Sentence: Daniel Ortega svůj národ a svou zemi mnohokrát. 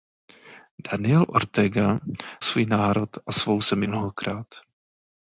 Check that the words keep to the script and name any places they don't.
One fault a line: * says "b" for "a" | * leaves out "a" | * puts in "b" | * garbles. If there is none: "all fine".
all fine